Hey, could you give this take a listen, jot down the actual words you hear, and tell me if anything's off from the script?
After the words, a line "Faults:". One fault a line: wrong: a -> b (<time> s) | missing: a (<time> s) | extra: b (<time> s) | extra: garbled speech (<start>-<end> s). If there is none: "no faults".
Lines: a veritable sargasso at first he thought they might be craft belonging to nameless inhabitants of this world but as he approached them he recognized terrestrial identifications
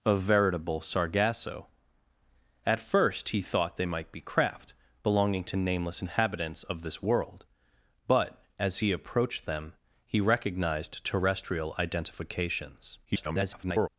a veritable sargasso at first he thought they might be craft belonging to nameless inhabitants of this world but as he approached them he recognized terrestrial identifications [garbled]
Faults:
extra: garbled speech (13.0-13.9 s)